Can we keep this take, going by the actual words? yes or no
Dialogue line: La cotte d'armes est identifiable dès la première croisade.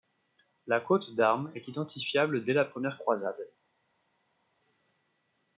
yes